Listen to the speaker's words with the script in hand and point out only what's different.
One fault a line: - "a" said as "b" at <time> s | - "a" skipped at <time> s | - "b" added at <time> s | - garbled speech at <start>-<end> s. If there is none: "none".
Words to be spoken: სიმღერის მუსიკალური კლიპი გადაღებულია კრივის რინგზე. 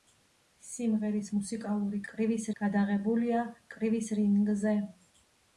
- "კლიპი" said as "კრივის" at 2.1 s